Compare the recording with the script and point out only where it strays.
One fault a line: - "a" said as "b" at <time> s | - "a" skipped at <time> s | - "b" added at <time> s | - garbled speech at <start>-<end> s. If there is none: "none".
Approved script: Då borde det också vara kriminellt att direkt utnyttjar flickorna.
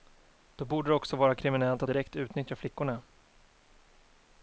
none